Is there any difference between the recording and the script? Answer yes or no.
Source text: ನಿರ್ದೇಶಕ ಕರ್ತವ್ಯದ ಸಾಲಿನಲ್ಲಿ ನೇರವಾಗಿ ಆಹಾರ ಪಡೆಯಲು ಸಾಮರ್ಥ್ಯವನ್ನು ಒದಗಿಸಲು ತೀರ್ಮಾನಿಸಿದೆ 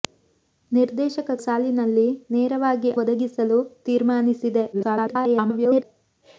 yes